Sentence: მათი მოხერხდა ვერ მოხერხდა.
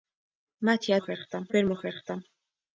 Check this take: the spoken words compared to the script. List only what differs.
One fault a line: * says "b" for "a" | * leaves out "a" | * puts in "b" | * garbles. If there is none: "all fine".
all fine